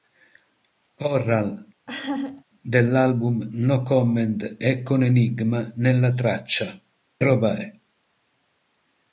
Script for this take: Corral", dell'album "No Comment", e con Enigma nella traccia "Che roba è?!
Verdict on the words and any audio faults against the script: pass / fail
fail